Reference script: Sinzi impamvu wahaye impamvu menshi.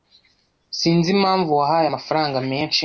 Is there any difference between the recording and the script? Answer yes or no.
yes